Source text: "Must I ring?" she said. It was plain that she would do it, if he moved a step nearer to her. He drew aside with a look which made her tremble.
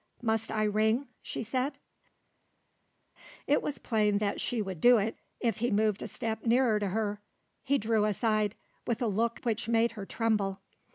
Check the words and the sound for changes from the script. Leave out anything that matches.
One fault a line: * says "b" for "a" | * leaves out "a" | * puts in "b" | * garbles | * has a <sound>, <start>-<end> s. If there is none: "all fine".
all fine